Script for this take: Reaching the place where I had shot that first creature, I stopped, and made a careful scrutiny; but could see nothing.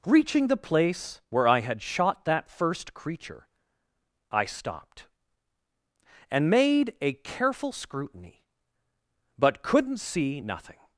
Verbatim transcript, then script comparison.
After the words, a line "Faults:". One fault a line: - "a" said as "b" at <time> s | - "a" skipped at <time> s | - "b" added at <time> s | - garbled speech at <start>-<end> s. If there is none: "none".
Reaching the place where I had shot that first creature, I stopped, and made a careful scrutiny; but couldn't see nothing.
Faults:
- "could" said as "couldn't" at 9.6 s